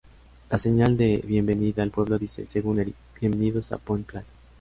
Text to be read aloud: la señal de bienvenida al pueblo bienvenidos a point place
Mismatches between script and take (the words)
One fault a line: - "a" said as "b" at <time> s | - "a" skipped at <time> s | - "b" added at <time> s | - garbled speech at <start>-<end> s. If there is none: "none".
- "dice según eric" added at 2.2 s